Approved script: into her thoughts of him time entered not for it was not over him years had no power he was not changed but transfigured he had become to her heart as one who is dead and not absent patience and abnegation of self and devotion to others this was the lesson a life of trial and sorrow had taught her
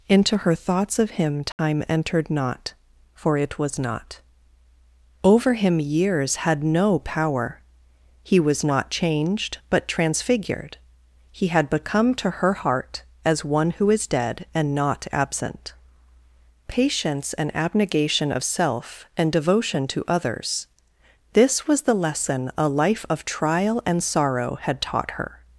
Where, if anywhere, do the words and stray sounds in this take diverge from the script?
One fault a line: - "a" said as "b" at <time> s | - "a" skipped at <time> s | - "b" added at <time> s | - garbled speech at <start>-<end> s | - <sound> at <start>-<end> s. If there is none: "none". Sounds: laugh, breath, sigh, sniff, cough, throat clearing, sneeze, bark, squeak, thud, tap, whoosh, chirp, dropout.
- dropout at 1.5-1.6 s